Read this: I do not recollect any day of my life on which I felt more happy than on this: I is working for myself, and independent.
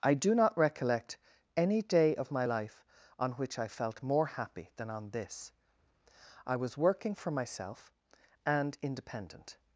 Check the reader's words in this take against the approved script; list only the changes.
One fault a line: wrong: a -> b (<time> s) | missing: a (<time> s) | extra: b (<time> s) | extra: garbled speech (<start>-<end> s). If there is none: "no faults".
wrong: is -> was (6.5 s)